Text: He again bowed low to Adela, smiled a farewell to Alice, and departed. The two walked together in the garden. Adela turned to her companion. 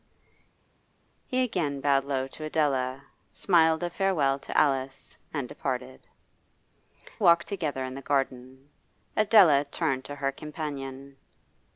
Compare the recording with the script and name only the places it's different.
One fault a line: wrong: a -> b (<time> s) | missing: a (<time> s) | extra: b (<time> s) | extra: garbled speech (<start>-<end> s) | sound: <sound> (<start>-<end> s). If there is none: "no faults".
missing: The two (6.0 s)